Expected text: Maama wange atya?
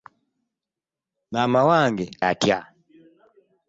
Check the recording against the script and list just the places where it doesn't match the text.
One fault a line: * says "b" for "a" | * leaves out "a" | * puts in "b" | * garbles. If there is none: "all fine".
all fine